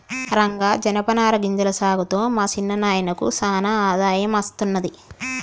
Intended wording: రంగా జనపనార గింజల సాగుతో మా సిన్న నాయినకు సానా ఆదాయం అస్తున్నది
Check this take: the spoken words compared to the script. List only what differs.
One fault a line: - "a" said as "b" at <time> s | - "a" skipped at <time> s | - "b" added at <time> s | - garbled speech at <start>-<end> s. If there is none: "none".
none